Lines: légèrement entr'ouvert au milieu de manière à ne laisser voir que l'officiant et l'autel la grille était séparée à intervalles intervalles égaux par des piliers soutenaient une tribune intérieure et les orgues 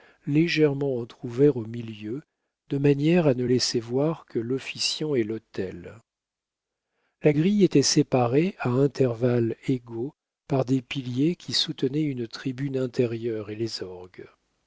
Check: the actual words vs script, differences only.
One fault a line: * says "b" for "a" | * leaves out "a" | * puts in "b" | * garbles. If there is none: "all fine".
* leaves out "intervalles"
* puts in "qui"